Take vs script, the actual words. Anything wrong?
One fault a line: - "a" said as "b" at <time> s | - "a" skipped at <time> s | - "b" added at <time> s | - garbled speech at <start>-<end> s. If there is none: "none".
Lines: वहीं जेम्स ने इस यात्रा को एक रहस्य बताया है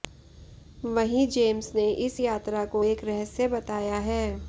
none